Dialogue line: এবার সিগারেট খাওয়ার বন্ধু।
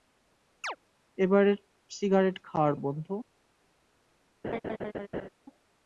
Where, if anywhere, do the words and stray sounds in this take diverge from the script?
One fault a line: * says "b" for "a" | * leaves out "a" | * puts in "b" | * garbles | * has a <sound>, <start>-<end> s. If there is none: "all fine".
* has a chirp, 0.6-0.8 s
* has a laugh, 4.4-5.3 s